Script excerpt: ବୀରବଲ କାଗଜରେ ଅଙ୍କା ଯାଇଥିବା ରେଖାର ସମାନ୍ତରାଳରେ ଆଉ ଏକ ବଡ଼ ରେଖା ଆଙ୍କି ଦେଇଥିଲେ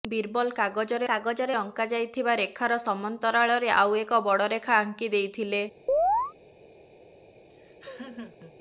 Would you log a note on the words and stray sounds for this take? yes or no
yes